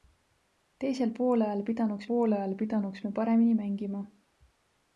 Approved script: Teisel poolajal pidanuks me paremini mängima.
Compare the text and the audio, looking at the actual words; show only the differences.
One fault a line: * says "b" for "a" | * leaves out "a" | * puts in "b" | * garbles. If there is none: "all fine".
* puts in "poolajal pidanuks"